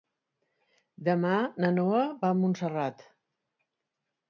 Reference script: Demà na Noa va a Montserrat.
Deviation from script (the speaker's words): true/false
false